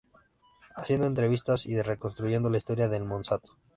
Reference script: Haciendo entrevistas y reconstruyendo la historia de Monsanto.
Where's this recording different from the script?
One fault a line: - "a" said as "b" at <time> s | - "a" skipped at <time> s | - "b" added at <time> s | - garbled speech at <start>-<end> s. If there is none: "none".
none